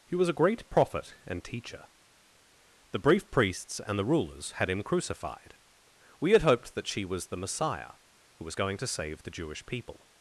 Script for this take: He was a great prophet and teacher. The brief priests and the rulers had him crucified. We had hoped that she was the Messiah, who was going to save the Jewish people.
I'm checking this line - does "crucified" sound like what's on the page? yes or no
yes